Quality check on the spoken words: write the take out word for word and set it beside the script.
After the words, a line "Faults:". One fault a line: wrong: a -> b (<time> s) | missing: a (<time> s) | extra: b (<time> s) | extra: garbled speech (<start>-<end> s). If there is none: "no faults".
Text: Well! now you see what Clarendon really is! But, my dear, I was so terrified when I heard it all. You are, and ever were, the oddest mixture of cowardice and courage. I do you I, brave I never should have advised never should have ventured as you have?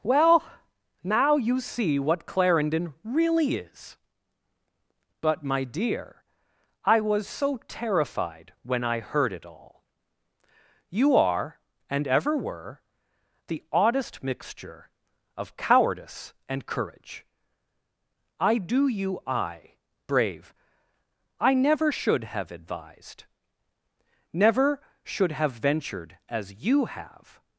Well! now you see what Clarendon really is! But, my dear, I was so terrified when I heard it all. You are, and ever were, the oddest mixture of cowardice and courage. I do you I, brave I never should have advised never should have ventured as you have?
Faults:
no faults